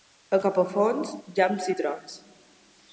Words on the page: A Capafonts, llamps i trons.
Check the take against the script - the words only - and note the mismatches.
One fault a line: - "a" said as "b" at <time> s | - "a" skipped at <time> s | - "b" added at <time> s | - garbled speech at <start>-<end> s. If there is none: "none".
none